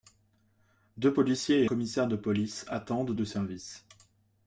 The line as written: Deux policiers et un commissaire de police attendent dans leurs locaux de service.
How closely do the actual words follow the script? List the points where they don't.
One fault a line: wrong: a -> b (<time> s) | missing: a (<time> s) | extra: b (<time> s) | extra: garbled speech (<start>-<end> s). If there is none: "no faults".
missing: un (1.7 s)
missing: dans leurs locaux (3.1 s)